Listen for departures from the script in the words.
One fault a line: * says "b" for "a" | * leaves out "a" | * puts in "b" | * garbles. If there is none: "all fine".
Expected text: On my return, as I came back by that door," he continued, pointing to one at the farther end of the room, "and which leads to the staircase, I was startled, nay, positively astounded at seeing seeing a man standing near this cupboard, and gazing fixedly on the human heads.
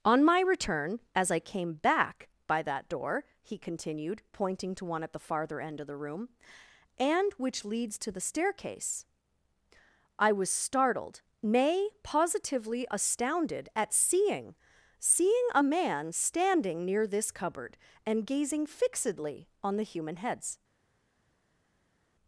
all fine